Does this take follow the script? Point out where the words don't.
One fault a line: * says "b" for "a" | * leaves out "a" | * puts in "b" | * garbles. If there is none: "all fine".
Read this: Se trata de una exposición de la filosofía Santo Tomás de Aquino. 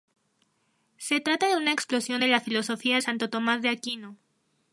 all fine